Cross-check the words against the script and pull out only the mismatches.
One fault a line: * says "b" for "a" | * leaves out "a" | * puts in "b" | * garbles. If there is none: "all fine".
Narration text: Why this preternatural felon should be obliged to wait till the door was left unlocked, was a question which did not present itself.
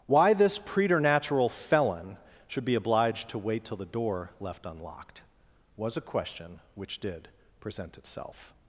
* leaves out "was"
* leaves out "not"